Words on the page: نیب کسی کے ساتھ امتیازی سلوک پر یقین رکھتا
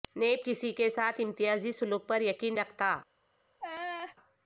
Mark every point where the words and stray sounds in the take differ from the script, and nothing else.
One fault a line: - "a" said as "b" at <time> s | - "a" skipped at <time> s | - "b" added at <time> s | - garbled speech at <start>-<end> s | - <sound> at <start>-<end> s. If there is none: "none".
- laugh at 3.6-4.2 s